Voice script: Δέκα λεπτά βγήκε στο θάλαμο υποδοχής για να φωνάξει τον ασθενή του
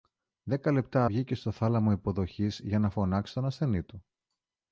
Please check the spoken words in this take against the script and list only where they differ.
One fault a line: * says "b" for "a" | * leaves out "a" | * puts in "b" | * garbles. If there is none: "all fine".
all fine